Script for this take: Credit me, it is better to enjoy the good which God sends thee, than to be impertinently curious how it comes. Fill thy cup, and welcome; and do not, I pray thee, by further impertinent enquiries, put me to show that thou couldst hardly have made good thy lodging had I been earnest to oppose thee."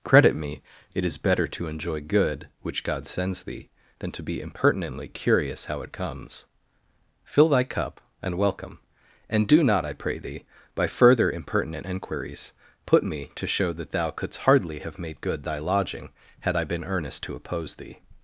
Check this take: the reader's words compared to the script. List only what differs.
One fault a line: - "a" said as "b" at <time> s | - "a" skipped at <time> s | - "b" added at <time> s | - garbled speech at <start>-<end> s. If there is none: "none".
- "the" skipped at 2.0 s